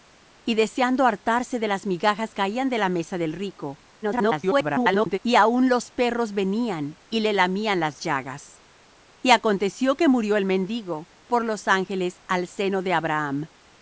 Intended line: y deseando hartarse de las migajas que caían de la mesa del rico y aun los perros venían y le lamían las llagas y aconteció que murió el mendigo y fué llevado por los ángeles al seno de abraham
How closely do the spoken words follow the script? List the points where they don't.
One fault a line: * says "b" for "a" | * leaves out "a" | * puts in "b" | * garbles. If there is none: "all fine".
* leaves out "que"
* garbles
* leaves out "y fué llevado"